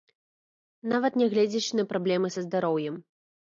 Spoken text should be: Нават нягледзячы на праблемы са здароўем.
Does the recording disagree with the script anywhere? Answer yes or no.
no